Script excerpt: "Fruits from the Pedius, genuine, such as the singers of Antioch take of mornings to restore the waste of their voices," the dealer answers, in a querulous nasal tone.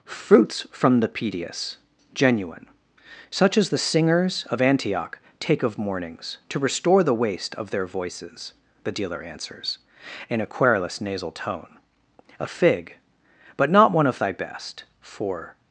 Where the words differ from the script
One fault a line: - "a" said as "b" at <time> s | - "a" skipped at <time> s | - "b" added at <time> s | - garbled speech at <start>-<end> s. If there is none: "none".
- "A fig but not one of thy best for" added at 12.4 s